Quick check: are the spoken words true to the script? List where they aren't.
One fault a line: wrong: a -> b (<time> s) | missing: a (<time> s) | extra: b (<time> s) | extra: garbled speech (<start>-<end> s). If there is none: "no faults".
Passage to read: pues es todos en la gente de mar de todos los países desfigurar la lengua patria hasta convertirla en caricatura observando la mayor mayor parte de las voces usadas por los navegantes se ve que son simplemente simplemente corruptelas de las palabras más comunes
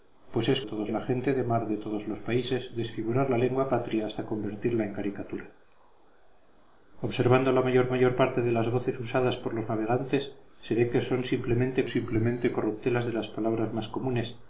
no faults